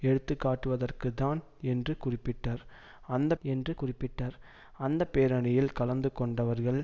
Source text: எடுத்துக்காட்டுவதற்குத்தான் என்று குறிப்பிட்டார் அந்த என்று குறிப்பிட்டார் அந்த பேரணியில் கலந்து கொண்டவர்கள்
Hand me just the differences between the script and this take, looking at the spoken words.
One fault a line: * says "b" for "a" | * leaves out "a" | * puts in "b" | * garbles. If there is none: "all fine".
all fine